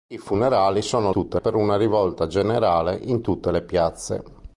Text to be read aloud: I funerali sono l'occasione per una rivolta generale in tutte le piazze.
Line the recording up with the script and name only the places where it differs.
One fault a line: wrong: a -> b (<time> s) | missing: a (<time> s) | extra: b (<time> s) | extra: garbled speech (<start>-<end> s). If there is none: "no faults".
wrong: l'occasione -> tutte (1.1 s)